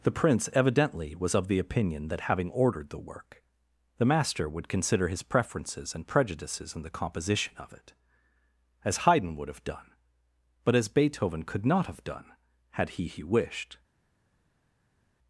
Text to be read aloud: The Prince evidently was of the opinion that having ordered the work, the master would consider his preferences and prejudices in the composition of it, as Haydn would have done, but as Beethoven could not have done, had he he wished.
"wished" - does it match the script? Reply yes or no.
yes